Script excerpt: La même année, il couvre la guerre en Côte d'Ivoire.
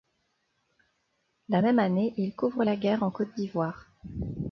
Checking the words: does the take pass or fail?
pass